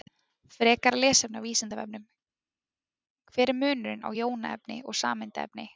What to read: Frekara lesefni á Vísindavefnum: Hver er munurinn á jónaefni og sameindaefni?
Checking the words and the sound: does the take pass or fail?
pass